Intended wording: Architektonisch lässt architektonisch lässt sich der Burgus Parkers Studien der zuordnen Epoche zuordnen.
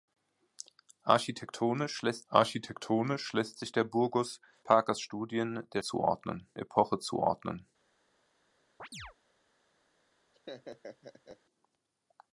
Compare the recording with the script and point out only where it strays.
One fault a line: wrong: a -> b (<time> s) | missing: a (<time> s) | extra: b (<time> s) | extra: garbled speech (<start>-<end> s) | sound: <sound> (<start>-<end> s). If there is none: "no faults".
sound: chirp (8.8-9.1 s)
sound: laugh (10.3-11.4 s)